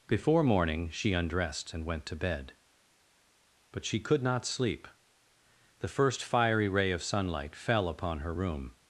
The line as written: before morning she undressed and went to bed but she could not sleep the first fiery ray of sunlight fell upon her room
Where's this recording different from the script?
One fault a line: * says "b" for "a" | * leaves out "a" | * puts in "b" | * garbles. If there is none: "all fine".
all fine